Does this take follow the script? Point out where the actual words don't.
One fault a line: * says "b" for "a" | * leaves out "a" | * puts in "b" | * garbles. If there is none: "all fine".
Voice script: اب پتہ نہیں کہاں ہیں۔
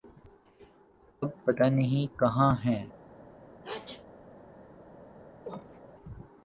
all fine